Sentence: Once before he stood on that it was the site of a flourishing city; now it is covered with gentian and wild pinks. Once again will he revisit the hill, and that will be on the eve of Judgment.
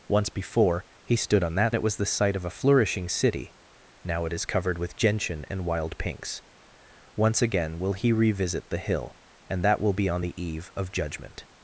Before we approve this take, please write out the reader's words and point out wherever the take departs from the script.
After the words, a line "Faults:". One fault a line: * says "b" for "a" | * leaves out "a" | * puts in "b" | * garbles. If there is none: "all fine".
Once before he stood on that it was the site of a flourishing city; now it is covered with gentian and wild pinks. Once again will he revisit the hill, and that will be on the eve of Judgment.
Faults:
all fine